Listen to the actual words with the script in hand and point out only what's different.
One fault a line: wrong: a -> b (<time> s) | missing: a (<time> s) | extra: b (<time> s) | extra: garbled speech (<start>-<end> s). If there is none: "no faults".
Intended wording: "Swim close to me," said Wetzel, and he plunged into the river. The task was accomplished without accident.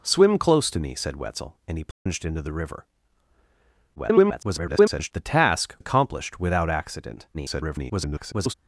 extra: garbled speech (4.0-5.1 s)
missing: was (5.8 s)
extra: garbled speech (7.3-8.5 s)